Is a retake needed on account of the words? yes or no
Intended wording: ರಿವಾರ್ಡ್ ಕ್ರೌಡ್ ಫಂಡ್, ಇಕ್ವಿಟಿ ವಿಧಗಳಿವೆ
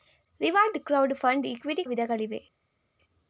no